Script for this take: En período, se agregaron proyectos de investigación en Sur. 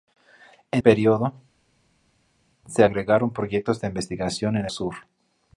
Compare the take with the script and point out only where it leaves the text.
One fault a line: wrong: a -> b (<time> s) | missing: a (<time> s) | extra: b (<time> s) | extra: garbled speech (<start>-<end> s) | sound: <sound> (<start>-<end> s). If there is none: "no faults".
no faults